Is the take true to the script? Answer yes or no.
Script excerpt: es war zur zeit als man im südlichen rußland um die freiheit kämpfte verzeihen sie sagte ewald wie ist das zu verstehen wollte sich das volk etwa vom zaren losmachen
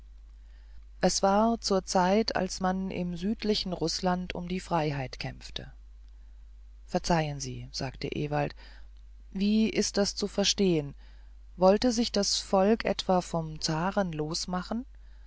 yes